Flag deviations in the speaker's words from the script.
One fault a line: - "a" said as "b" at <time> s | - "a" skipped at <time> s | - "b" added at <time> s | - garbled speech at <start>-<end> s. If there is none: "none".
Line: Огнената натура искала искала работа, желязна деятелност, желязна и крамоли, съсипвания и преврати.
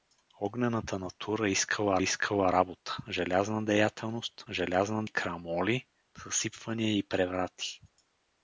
none